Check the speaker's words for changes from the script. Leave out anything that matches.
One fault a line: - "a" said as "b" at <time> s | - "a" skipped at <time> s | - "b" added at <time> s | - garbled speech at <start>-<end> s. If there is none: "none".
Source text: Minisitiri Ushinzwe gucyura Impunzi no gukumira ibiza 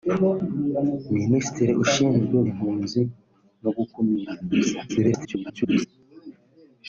- "gucyura" skipped at 2.4 s
- garbled speech at 4.9-5.9 s